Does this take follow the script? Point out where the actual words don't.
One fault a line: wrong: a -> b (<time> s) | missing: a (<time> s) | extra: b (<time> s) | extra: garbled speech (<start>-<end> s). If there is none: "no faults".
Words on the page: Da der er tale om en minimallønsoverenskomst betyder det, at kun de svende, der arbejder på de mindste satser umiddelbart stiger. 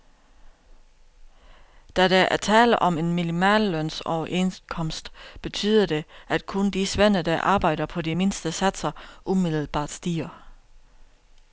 no faults